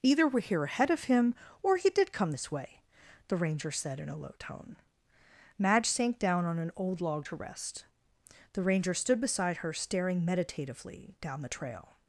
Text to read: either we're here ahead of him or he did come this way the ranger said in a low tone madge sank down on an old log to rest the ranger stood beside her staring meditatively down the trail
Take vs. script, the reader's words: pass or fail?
pass